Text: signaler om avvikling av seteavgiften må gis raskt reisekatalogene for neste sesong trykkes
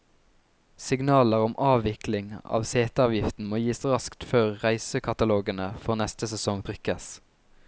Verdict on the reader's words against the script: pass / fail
fail